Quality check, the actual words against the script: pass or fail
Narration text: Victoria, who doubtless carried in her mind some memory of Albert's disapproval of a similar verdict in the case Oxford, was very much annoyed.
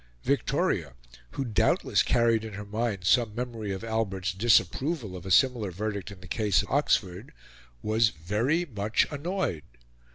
pass